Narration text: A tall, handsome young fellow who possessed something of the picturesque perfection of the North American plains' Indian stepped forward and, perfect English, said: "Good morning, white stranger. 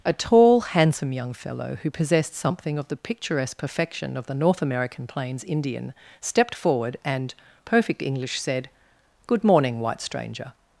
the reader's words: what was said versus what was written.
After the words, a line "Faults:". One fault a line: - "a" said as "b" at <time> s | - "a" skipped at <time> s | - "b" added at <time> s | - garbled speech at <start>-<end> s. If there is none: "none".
A tall, handsome young fellow who possessed something of the picturesque perfection of the North American plains' Indian stepped forward and, perfect English, said: "Good morning, white stranger.
Faults:
none